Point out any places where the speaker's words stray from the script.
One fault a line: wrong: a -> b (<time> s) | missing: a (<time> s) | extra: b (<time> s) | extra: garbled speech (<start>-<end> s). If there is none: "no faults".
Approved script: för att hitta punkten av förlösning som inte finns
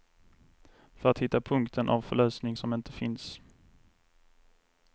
no faults